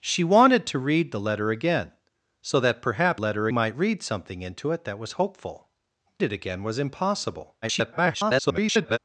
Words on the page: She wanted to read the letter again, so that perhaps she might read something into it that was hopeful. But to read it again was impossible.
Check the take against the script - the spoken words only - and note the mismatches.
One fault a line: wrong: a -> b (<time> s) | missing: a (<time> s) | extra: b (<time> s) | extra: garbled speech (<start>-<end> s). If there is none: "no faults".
wrong: she -> letter (3.2 s)
missing: But to read (5.7 s)
extra: garbled speech (7.6-9.0 s)